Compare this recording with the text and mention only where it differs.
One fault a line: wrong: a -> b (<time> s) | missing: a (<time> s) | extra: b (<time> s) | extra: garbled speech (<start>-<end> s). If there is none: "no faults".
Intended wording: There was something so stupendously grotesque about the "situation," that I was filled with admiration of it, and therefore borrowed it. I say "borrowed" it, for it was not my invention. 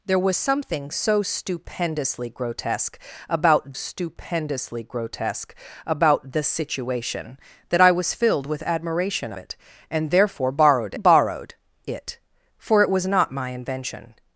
extra: stupendously grotesque about (3.7 s)
missing: of (9.3 s)
missing: it I say (10.9 s)